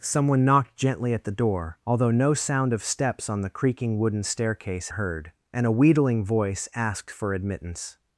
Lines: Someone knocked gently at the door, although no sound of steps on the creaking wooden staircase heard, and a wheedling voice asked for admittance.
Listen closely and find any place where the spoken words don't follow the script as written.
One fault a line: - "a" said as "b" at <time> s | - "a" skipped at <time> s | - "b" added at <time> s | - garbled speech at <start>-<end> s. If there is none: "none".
none